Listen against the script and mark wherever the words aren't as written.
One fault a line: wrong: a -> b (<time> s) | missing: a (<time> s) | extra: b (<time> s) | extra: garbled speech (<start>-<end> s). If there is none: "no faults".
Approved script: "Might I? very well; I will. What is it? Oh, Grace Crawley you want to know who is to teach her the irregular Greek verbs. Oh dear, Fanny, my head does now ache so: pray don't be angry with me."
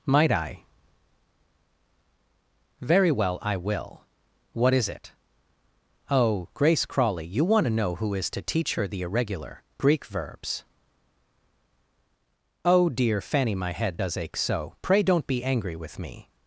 missing: now (14.2 s)